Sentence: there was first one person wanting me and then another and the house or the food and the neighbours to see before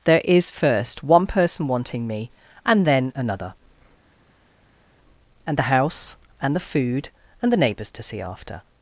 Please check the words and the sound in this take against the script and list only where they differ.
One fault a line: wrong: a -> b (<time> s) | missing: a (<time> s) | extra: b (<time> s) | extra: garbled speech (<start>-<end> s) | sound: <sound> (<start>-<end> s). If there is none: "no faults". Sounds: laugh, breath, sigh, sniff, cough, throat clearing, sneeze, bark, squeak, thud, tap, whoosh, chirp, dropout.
wrong: was -> is (0.2 s)
wrong: or -> and (6.4 s)
wrong: before -> after (8.2 s)